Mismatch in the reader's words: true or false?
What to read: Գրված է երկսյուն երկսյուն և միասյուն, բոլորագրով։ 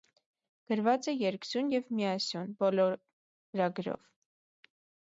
true